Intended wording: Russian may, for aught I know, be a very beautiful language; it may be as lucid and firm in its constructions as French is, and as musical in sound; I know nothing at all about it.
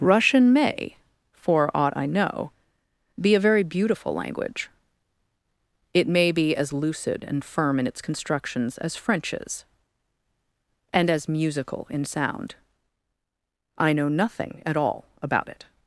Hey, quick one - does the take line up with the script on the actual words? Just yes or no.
yes